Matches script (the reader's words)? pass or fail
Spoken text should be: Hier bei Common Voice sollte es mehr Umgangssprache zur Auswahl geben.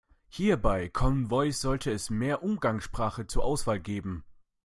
pass